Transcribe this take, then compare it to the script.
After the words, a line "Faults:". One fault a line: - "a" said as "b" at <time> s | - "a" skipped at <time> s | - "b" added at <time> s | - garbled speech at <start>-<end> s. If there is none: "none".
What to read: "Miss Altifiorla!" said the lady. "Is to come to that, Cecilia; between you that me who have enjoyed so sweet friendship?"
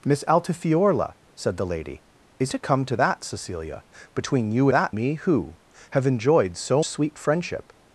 "Miss Altifiorla!" said the lady. "Is to come to that, Cecilia; between you that me who have enjoyed so sweet friendship?"
Faults:
none